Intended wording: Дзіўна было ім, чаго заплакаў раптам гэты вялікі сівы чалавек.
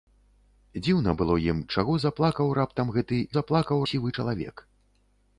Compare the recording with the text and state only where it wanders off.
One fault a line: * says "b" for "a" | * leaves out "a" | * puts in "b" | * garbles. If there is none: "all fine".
* says "заплакаў" for "вялікі"